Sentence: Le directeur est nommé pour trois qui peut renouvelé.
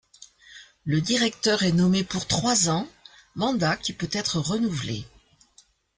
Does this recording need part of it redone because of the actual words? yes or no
yes